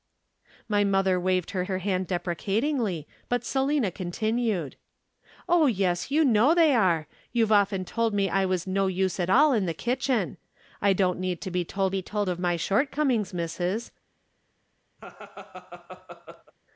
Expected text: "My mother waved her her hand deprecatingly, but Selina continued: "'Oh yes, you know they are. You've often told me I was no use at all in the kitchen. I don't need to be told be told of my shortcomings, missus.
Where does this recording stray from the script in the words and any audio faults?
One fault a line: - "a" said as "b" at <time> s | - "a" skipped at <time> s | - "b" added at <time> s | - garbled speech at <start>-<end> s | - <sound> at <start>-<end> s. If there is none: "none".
- laugh at 15.0-16.5 s